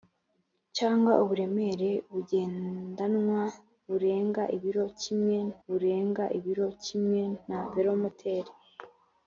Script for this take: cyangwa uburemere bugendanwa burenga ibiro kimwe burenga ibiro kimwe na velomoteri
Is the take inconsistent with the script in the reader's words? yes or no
no